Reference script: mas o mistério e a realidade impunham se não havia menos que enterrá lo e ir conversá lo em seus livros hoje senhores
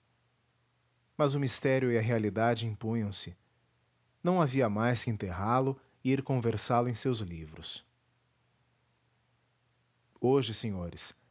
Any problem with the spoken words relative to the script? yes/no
yes